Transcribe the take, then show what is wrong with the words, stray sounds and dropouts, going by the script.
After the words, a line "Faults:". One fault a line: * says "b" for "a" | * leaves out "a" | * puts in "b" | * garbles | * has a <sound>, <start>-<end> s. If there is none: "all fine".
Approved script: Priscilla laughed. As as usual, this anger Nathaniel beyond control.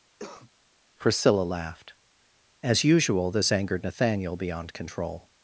Priscilla laughed. As usual, this angered Nathaniel beyond control.
Faults:
* has a cough, 0.2-0.5 s
* leaves out "as"
* says "angered" for "anger"